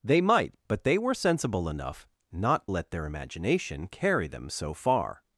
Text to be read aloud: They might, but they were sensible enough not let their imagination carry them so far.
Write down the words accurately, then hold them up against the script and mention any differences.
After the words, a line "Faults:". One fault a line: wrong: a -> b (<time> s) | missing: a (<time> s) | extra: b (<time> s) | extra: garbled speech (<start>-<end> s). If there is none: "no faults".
They might, but they were sensible enough not let their imagination carry them so far.
Faults:
no faults